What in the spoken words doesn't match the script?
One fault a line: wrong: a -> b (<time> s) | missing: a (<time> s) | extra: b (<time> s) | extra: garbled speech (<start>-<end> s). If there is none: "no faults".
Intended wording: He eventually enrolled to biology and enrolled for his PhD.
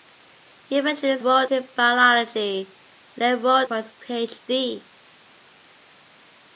no faults